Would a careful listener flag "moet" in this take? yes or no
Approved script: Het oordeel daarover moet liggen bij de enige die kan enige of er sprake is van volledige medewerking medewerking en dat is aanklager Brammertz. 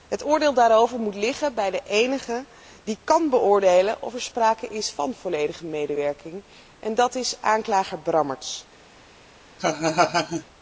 no